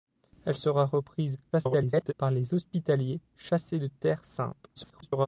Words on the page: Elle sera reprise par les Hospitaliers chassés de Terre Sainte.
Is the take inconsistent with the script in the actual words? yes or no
yes